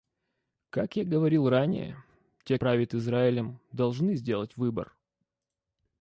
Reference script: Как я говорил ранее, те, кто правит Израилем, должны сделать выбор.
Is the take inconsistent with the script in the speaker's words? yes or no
yes